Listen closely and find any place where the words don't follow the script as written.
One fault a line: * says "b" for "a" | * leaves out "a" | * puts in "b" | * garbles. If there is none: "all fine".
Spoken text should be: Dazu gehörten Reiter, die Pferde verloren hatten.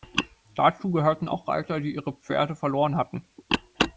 * puts in "auch"
* puts in "ihre"